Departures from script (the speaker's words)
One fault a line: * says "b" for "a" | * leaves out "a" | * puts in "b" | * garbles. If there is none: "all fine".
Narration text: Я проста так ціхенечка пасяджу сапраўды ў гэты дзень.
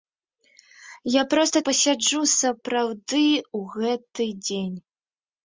* leaves out "так ціхенечка"